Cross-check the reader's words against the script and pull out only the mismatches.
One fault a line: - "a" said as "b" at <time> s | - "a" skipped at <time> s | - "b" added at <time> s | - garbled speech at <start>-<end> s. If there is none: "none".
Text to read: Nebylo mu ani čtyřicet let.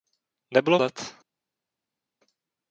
- "mu ani čtyřicet" skipped at 0.8 s